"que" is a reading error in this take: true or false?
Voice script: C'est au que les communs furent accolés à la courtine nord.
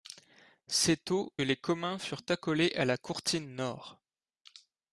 true